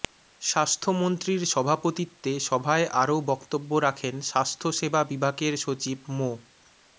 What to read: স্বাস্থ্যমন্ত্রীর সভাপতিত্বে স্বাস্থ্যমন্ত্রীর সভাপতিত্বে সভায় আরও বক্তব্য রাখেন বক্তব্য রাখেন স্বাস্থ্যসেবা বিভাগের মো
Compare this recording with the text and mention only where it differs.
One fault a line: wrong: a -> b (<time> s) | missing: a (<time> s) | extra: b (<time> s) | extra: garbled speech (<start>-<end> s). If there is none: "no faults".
missing: স্বাস্থ্যমন্ত্রীর সভাপতিত্বে (2.3 s)
missing: বক্তব্য রাখেন (4.1 s)
extra: সচিব (5.6 s)